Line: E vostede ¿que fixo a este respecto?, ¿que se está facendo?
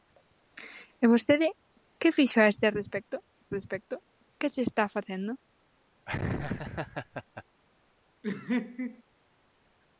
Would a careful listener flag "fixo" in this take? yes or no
no